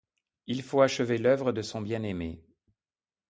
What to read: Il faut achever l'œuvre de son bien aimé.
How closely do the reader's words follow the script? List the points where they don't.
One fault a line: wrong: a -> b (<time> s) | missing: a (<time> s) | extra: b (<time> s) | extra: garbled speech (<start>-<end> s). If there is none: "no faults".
no faults